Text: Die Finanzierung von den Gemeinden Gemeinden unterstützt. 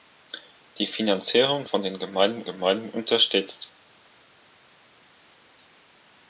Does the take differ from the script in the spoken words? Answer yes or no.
no